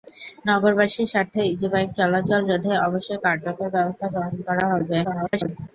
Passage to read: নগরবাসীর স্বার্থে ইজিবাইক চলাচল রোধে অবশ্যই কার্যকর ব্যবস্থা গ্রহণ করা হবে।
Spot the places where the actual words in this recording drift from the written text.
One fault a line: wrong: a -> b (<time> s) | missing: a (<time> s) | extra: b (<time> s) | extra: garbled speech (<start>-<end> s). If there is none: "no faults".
extra: garbled speech (5.0-5.5 s)